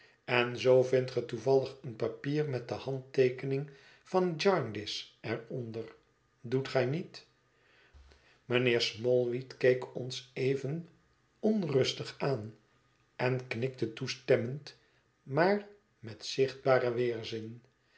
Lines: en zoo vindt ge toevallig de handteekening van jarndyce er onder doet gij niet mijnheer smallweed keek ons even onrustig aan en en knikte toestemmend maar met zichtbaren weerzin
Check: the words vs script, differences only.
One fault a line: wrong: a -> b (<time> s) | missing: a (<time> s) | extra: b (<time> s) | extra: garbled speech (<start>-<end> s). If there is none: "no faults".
extra: een papier met (1.8 s)
missing: en (13.5 s)